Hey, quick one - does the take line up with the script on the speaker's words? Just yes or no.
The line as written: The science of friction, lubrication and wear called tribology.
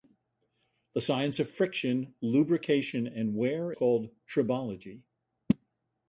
yes